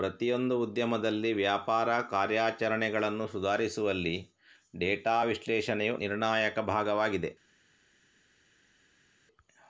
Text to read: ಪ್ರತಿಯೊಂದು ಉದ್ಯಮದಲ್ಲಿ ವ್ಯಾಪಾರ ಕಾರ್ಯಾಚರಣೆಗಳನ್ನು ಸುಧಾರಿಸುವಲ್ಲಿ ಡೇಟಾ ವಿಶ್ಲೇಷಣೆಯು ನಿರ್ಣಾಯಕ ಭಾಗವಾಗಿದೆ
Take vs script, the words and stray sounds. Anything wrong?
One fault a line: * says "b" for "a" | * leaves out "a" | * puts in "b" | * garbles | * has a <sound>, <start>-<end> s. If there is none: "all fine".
all fine